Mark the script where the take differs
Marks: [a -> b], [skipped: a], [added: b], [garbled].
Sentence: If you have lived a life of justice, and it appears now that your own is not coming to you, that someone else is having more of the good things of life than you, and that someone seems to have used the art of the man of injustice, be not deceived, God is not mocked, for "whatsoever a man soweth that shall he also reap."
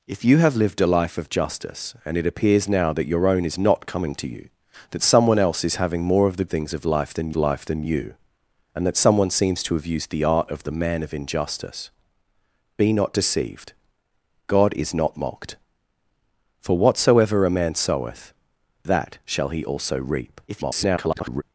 If you have lived a life of justice, and it appears now that your own is not coming to you, that someone else is having more of the [skipped: good] things of life than [added: life than] you, and that someone seems to have used the art of the man of injustice, be not deceived, God is not mocked, for "whatsoever a man soweth that shall he also reap." [garbled]